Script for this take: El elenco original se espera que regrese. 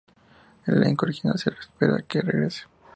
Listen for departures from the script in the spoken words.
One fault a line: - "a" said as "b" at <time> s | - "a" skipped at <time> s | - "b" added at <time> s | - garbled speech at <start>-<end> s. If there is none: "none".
none